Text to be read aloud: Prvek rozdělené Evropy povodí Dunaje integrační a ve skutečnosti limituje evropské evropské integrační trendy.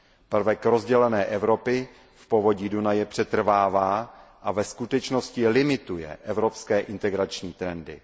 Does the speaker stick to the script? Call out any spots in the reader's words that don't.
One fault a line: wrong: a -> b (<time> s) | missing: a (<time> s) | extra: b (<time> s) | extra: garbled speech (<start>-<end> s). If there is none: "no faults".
extra: v (2.1 s)
wrong: integrační -> přetrvává (3.1 s)
missing: evropské (6.8 s)